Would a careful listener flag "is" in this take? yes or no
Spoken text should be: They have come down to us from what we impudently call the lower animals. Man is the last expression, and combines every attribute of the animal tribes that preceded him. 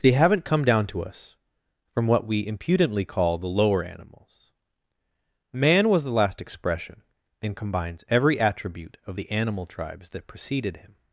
yes